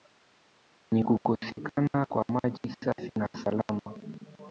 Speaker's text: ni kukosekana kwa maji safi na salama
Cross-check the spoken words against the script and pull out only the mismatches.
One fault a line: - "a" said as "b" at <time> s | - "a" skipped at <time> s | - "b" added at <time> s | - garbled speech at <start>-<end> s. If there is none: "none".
none